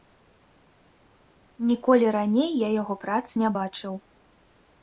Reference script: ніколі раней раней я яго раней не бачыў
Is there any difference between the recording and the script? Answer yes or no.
yes